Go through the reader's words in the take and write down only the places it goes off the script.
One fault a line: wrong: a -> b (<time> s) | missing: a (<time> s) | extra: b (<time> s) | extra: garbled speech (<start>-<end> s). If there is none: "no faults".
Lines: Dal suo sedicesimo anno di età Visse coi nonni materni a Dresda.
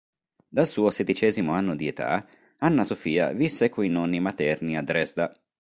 extra: Anna Sofia (2.6 s)